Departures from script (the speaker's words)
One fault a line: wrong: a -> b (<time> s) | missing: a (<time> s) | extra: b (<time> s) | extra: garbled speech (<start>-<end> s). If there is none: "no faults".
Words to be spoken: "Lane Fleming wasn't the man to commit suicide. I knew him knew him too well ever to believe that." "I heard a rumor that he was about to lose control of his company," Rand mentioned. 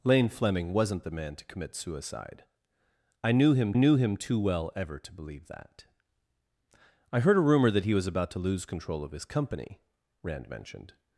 no faults